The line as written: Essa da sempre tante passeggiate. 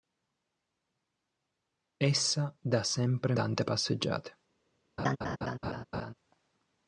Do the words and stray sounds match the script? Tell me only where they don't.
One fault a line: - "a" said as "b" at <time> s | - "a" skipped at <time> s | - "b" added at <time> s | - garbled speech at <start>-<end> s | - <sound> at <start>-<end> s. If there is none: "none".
- laugh at 5.0-6.1 s